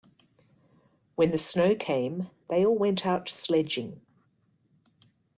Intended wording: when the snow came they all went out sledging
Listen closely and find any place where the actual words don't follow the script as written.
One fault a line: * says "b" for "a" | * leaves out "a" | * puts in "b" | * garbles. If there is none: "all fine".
all fine